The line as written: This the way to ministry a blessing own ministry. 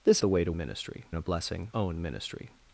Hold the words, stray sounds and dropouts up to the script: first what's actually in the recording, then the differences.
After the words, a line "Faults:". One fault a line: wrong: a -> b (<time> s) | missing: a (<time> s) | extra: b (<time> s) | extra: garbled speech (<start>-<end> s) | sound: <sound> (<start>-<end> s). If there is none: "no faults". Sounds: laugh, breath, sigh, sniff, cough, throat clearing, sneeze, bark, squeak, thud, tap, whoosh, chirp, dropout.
This the way to ministry a blessing own ministry.
Faults:
no faults